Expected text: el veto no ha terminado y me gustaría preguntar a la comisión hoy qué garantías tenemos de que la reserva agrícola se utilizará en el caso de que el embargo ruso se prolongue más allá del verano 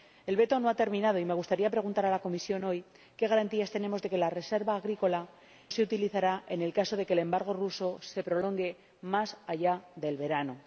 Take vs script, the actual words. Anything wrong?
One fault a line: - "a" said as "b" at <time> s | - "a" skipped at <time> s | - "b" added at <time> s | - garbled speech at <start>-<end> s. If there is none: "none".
none